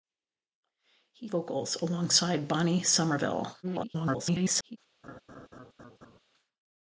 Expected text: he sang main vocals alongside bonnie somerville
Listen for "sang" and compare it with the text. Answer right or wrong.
wrong